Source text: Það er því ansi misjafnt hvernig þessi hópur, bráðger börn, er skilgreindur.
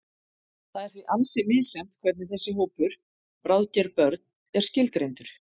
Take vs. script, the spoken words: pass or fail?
pass